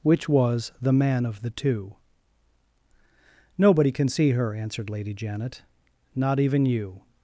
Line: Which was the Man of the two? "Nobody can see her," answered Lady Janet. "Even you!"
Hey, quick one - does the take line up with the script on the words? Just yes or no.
no